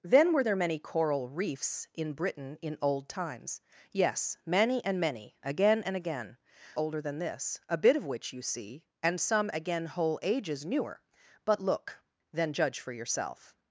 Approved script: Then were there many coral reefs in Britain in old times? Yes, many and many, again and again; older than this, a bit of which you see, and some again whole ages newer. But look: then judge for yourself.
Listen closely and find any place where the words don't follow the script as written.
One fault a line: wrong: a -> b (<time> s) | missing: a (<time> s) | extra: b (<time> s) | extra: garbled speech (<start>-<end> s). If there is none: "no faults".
no faults